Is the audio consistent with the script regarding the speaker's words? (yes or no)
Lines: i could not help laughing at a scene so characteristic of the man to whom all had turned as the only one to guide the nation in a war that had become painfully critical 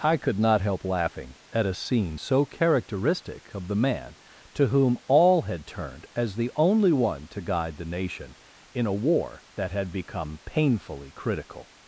yes